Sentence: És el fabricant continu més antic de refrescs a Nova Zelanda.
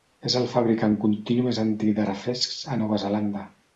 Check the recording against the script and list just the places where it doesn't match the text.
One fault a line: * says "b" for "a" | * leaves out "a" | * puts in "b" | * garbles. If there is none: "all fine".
all fine